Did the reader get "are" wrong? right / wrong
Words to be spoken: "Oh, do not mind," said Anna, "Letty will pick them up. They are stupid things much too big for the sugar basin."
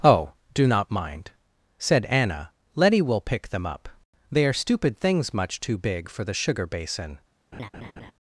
right